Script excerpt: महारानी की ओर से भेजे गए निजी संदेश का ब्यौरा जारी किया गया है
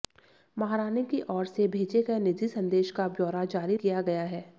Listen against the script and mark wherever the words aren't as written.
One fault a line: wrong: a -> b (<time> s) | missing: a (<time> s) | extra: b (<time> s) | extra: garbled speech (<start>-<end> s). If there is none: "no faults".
no faults